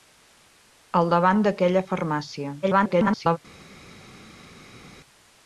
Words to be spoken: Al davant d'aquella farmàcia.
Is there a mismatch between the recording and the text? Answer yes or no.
yes